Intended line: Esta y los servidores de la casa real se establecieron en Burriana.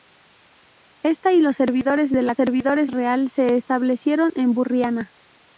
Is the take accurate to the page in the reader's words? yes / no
no